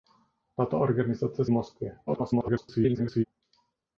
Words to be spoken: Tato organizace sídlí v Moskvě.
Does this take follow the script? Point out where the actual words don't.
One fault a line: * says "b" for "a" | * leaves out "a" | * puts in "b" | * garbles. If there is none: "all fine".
* leaves out "sídlí"
* garbles